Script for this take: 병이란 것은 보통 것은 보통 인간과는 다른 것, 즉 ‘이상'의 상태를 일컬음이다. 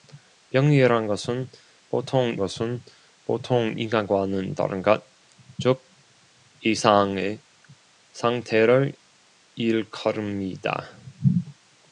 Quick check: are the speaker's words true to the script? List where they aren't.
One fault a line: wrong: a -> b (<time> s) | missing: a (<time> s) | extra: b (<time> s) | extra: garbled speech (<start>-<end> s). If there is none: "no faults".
no faults